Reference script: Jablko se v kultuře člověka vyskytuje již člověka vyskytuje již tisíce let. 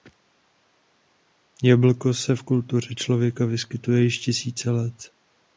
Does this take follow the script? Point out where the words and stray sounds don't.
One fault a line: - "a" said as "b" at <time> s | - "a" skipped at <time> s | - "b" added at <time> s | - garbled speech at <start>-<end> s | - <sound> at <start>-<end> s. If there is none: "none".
- "člověka vyskytuje již" skipped at 4.2 s